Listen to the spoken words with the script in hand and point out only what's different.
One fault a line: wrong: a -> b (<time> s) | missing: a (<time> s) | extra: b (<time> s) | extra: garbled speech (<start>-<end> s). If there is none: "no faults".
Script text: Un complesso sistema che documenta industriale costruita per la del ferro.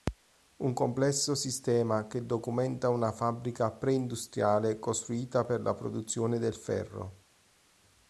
extra: una fabbrica pre (2.9 s)
extra: produzione (5.8 s)